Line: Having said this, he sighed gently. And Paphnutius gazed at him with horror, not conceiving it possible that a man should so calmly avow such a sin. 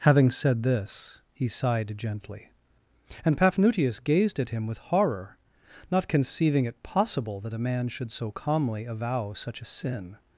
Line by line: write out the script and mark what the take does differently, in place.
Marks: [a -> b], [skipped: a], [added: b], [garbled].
Having said this, he sighed gently. And Paphnutius gazed at him with horror, not conceiving it possible that a man should so calmly avow such a sin.